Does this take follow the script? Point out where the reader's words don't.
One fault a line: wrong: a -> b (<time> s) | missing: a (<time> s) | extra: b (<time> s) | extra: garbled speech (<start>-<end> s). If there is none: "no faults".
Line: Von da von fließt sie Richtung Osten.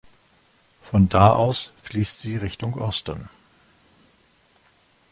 wrong: von -> aus (1.3 s)